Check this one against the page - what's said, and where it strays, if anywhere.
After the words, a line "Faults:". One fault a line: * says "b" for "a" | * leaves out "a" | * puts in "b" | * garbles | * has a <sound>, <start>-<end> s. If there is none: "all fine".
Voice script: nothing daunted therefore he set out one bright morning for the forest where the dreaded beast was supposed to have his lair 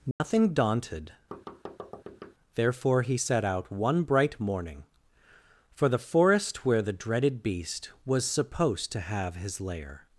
nothing daunted therefore he set out one bright morning for the forest where the dreaded beast was supposed to have his lair
Faults:
* has a dropout, 0.1-0.2 s
* has a thud, 1.3-2.3 s